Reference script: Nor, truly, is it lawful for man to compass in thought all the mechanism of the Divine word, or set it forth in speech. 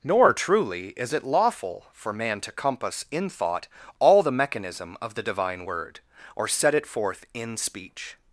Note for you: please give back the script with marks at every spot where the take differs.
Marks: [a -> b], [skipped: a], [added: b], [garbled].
Nor, truly, is it lawful for man to compass in thought all the mechanism of the Divine word, or set it forth in speech.